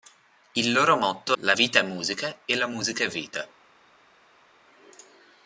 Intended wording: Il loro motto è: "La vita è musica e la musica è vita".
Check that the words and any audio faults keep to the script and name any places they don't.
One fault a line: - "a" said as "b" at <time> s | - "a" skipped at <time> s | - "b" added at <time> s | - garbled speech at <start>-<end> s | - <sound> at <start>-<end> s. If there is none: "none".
- "è" skipped at 1.4 s